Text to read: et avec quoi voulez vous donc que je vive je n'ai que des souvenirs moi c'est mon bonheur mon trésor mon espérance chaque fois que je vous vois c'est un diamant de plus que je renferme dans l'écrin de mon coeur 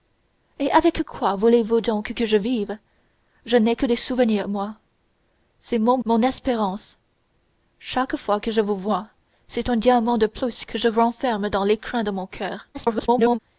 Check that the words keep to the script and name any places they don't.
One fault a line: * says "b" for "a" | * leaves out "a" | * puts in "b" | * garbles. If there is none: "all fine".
* leaves out "bonheur mon trésor"
* garbles